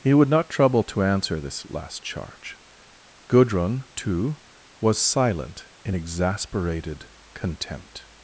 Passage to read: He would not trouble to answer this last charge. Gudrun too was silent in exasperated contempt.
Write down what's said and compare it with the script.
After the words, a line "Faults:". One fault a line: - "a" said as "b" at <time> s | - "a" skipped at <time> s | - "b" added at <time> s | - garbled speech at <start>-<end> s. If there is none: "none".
He would not trouble to answer this last charge. Gudrun too was silent in exasperated contempt.
Faults:
none